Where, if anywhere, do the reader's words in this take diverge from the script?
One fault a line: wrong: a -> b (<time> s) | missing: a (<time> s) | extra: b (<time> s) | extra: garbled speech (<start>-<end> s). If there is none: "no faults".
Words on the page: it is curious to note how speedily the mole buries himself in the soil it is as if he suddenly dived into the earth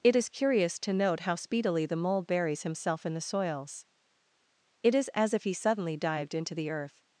wrong: soil -> soils (3.2 s)